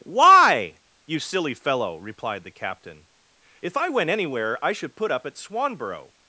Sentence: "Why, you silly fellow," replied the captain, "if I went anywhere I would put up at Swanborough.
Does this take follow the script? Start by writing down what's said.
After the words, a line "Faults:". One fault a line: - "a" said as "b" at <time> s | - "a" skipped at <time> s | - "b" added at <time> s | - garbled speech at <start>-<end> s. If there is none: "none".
"Why, you silly fellow," replied the captain, "if I went anywhere I should put up at Swanborough.
Faults:
- "would" said as "should" at 4.7 s